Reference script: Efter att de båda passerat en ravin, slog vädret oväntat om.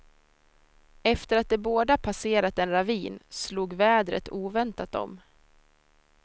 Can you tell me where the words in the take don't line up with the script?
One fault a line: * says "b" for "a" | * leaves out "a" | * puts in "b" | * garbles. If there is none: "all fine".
all fine